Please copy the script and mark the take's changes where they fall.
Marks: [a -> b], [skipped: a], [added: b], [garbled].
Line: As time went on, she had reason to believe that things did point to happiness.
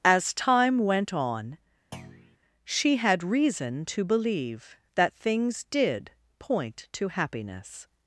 As time went on, she had reason to believe that things did point to happiness.